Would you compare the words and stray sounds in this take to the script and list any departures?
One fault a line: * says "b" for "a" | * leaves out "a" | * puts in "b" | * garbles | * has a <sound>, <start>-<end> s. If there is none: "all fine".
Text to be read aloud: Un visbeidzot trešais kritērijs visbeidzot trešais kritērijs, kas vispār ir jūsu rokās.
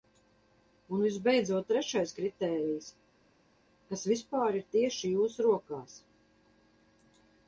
* leaves out "visbeidzot trešais kritērijs"
* puts in "tieši"